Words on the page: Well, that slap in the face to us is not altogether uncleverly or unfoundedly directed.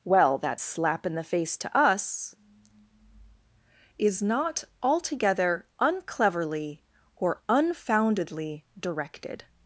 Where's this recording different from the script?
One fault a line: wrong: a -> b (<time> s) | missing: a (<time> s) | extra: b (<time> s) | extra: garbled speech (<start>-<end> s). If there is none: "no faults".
no faults